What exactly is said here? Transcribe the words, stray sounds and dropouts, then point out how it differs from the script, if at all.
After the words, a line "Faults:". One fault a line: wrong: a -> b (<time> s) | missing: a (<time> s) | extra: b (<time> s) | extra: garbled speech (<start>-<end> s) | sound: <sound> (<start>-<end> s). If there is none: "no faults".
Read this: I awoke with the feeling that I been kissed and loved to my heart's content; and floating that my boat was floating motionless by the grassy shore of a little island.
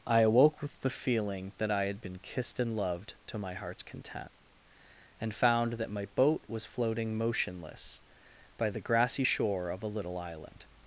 I awoke with the feeling that I had been kissed and loved to my heart's content; and found that my boat was floating motionless by the grassy shore of a little island.
Faults:
extra: had (1.9 s)
wrong: floating -> found (5.3 s)